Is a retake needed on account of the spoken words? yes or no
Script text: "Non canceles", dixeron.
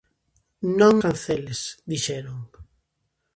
no